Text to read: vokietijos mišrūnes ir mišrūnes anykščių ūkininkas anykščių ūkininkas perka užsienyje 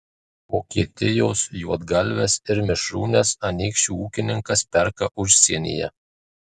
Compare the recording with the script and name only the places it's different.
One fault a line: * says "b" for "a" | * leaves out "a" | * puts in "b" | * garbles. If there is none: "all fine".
* says "juodgalves" for "mišrūnes"
* leaves out "anykščių ūkininkas"